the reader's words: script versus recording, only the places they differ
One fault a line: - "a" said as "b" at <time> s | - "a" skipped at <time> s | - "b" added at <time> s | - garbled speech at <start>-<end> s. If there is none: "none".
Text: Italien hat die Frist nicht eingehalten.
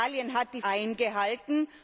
- "Frist nicht" skipped at 0.6 s